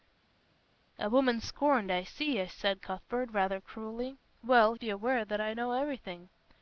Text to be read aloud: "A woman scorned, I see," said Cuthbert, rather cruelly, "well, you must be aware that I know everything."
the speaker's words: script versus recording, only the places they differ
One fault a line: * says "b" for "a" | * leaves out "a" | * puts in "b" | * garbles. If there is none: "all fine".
* leaves out "you must"